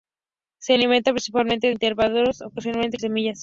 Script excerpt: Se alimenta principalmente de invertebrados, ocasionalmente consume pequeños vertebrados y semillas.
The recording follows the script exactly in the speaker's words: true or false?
false